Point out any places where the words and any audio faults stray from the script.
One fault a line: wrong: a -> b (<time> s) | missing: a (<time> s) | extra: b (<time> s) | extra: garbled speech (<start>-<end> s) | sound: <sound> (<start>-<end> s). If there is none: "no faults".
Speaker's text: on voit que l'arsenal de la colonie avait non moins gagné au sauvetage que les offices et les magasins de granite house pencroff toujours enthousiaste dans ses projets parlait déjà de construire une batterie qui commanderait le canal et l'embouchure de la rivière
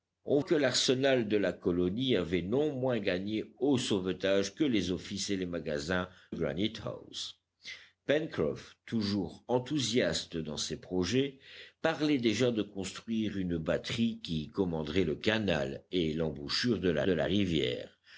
missing: voit (0.4 s)
missing: de (6.1 s)
extra: de la (17.0 s)